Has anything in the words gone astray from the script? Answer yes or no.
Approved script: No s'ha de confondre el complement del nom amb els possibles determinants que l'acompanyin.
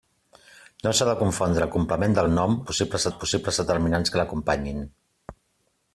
yes